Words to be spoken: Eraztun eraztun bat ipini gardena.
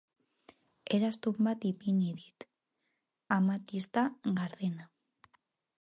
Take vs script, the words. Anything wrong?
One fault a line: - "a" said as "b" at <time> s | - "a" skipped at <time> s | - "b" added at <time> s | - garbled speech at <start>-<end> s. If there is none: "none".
- "eraztun" skipped at 1.4 s
- "dit amatista" added at 2.2 s